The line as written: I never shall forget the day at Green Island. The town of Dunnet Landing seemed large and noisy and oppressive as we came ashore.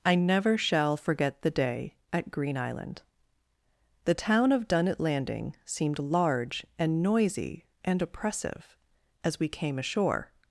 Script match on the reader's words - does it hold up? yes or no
yes